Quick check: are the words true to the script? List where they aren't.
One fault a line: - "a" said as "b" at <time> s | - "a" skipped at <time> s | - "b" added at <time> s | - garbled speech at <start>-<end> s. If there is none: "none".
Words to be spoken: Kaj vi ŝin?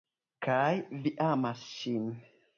- "amas" added at 1.3 s